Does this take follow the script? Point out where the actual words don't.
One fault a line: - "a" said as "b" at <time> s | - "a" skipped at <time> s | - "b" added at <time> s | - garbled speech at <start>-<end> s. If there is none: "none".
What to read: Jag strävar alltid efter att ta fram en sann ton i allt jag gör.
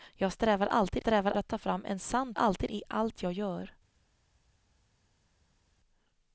- "efter" said as "strävar" at 1.0 s
- "ton" said as "alltid" at 2.3 s